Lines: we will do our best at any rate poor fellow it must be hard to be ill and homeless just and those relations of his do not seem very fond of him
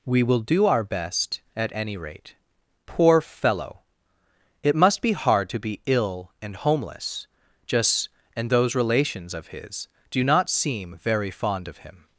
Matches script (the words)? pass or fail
pass